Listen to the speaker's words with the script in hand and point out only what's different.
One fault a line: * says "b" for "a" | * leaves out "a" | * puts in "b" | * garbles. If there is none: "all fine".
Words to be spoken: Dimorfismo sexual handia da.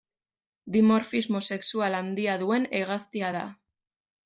* puts in "duen hegaztia"